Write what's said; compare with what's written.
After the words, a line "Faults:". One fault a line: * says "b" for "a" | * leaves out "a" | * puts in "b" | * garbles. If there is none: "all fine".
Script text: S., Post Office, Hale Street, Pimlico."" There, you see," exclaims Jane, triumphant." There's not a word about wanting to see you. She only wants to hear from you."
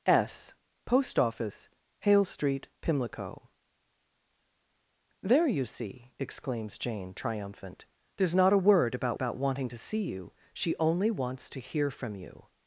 S., Post Office, Hale Street, Pimlico."" There, you see," exclaims Jane, triumphant." There's not a word about about wanting to see you. She only wants to hear from you."
Faults:
* puts in "about"